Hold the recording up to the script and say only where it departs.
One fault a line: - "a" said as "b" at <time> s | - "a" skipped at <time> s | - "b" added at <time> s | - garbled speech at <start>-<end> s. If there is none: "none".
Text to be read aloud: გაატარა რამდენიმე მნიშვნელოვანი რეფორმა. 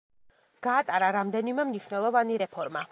none